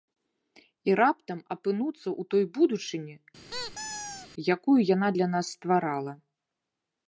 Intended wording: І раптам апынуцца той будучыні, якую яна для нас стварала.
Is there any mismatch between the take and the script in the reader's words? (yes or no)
yes